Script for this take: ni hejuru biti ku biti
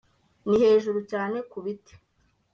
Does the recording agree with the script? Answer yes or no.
no